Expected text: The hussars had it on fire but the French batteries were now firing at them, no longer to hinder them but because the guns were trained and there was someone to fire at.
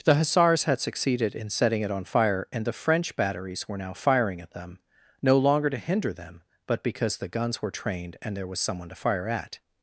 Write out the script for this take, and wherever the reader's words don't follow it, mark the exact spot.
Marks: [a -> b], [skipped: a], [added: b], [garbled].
The hussars had [added: succeeded in setting] it on fire [but -> and] the French batteries were now firing at them, no longer to hinder them but because the guns were trained and there was someone to fire at.